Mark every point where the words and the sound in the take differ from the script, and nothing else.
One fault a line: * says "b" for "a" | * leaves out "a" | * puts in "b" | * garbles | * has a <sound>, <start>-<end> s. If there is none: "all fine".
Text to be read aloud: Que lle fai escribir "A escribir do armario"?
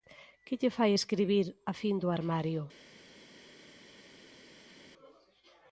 * says "fin" for "escribir"